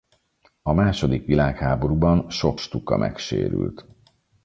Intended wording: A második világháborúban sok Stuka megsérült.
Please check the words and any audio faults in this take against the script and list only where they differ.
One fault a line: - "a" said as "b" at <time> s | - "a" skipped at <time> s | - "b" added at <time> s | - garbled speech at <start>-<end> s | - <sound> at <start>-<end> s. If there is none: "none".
none